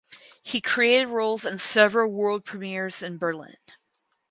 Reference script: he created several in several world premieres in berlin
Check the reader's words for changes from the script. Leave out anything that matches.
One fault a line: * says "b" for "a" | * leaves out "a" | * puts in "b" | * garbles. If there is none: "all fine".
* says "roles" for "several"